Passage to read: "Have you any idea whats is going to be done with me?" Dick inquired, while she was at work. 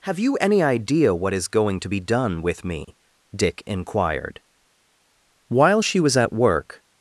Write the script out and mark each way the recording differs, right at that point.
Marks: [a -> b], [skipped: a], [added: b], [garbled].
"Have you any idea [whats -> what] is going to be done with me?" Dick inquired, while she was at work.